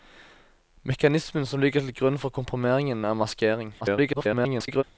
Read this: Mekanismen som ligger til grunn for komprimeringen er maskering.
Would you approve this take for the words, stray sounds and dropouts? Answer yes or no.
no